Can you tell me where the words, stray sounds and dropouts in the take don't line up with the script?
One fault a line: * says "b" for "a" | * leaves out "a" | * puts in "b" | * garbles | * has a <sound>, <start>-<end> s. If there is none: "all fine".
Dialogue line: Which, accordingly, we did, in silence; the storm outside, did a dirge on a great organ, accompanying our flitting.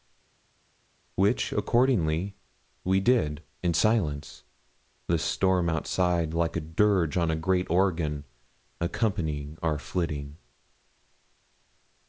* says "like" for "did"